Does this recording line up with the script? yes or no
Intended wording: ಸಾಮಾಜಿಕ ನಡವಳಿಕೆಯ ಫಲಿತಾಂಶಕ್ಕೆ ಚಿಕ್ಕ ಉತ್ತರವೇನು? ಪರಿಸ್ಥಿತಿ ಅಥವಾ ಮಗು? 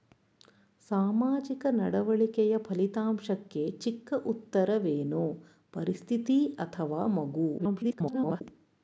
no